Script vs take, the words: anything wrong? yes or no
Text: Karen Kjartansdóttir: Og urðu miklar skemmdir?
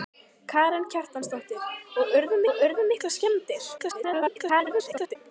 yes